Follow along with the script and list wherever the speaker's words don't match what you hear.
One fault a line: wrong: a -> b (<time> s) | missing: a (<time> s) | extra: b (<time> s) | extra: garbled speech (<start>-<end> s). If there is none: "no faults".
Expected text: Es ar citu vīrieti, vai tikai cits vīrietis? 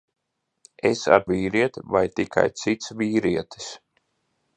missing: citu (1.2 s)